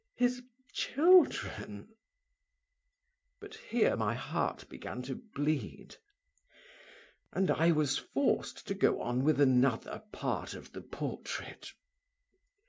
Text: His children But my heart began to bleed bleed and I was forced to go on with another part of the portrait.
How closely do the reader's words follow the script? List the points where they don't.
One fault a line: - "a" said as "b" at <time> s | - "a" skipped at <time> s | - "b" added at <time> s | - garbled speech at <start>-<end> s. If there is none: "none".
- "here" added at 3.5 s
- "bleed" skipped at 6.0 s